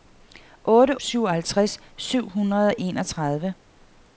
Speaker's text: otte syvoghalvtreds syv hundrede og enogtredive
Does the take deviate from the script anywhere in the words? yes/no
no